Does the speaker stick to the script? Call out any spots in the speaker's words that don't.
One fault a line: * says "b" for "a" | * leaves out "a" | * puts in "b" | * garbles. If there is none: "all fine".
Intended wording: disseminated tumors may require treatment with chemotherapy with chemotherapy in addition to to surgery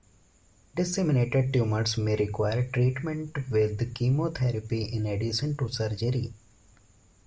* leaves out "with chemotherapy"
* leaves out "to"